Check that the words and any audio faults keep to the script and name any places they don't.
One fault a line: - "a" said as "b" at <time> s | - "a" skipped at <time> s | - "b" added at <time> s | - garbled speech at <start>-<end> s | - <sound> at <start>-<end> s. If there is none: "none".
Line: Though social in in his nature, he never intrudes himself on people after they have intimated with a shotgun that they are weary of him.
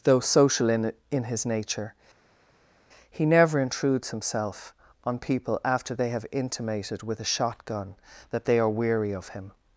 none